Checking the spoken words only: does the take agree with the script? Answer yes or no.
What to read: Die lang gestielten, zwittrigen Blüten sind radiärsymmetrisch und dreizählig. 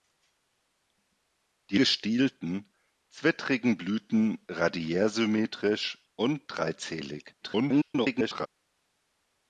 no